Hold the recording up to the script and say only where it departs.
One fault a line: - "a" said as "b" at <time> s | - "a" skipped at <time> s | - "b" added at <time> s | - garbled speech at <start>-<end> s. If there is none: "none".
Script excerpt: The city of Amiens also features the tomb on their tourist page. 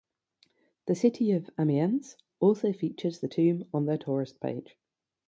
none